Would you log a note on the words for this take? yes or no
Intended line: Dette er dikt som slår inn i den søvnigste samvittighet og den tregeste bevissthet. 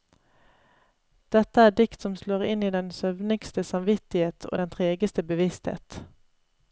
no